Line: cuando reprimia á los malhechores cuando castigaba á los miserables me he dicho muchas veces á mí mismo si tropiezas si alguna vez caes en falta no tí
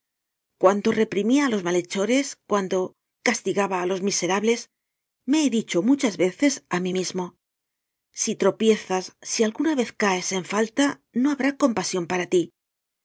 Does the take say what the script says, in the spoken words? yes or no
no